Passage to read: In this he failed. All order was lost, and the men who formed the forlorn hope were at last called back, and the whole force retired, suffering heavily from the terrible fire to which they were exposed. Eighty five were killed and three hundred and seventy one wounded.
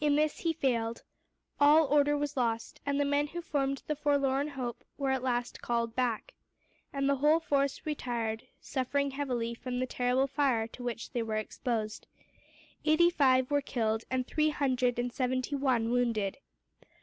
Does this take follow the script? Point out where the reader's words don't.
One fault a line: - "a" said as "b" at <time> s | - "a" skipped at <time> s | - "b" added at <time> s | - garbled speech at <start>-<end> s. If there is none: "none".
none